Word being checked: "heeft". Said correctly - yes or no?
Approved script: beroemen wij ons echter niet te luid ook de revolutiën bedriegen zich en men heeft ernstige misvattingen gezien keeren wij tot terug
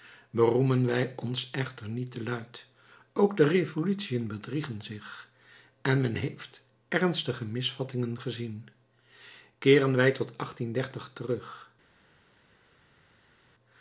yes